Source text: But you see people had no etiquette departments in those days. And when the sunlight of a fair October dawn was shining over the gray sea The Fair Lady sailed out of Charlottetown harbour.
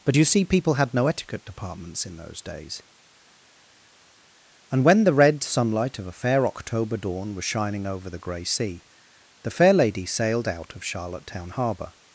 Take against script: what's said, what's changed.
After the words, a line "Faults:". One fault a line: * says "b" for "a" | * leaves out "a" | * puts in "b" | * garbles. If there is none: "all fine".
But you see people had no etiquette departments in those days. And when the red sunlight of a fair October dawn was shining over the gray sea The Fair Lady sailed out of Charlottetown harbour.
Faults:
* puts in "red"